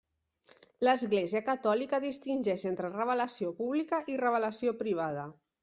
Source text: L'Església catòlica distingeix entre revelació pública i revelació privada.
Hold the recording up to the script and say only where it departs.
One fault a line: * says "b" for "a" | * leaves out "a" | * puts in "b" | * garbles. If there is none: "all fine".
all fine